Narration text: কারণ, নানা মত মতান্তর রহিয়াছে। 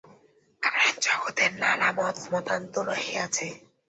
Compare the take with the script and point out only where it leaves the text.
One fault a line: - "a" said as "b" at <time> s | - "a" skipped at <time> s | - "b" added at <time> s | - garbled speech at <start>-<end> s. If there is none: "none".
- "জগতে" added at 1.1 s